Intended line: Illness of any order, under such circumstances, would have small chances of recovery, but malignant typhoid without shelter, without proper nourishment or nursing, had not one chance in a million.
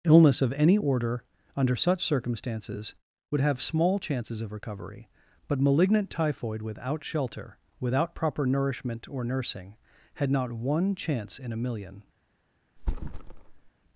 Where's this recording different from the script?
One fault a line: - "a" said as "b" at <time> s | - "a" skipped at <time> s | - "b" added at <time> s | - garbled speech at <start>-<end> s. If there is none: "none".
none